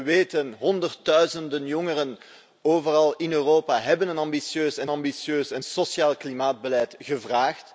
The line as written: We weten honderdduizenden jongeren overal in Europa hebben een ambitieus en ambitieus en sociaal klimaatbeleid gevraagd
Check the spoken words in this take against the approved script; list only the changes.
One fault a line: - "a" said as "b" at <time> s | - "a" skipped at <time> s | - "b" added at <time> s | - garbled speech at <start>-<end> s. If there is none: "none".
none